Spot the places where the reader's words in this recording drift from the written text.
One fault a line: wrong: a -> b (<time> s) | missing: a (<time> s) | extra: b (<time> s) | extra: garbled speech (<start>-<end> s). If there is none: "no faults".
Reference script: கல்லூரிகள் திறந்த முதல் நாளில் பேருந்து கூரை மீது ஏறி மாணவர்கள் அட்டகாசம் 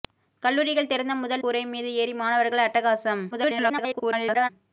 missing: நாளில் பேருந்து (1.4 s)
extra: garbled speech (3.3-4.5 s)